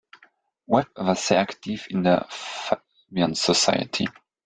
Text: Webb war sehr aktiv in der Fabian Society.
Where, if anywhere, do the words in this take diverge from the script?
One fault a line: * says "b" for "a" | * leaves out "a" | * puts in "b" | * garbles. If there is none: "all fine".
all fine